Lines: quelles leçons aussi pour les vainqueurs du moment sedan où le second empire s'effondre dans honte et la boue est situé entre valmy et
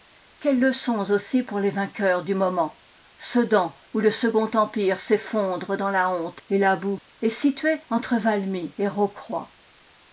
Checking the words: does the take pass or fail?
fail